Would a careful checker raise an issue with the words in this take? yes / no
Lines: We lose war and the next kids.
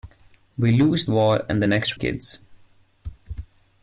no